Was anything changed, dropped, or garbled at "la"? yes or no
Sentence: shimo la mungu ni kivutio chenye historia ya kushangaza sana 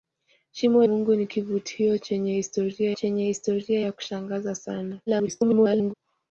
yes